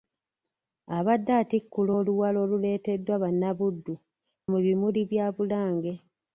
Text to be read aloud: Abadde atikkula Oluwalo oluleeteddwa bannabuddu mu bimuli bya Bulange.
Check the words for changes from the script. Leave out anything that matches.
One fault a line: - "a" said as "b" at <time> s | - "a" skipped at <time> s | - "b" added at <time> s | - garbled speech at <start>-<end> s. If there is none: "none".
none